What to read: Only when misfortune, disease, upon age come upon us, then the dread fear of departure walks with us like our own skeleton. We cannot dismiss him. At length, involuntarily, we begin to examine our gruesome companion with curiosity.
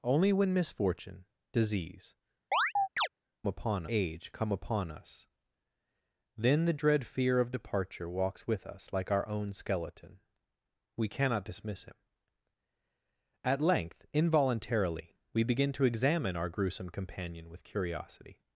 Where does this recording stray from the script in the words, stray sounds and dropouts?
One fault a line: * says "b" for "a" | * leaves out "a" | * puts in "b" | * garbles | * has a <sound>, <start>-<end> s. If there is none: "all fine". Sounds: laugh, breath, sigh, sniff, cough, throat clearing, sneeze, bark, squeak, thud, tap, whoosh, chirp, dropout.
* has a chirp, 2.5-3.1 s